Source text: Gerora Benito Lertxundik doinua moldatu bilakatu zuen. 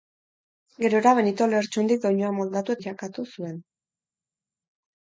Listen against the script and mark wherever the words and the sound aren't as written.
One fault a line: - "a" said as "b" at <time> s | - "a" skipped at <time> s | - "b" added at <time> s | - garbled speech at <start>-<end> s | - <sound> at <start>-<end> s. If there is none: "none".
none